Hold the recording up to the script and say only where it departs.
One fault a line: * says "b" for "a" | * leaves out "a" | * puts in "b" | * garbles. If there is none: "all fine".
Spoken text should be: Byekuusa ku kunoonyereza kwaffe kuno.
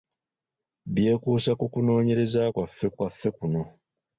* puts in "kwaffe"